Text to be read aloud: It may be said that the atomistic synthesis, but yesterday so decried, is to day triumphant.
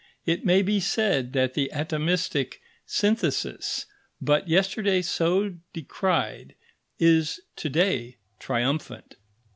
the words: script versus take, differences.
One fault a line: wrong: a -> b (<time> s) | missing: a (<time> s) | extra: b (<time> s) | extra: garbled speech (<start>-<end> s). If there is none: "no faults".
no faults